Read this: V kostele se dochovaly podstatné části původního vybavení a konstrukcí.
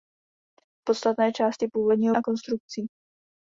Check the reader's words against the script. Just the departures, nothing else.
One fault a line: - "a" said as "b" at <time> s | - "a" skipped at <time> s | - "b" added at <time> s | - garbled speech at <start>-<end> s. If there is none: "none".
- "kostele se dochovaly" skipped at 0.8 s
- "vybavení" skipped at 2.2 s